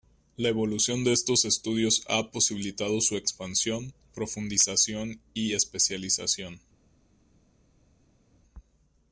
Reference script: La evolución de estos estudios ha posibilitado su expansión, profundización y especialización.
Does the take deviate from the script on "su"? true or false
false